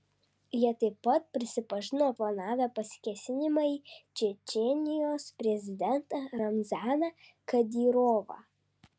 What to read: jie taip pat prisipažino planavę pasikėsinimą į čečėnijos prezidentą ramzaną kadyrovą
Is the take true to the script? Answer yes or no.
yes